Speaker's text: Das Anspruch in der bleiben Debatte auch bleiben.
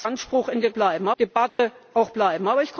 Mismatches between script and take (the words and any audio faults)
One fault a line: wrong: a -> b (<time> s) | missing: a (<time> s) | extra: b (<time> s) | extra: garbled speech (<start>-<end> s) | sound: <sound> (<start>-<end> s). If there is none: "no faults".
sound: dropout (1.5-1.6 s)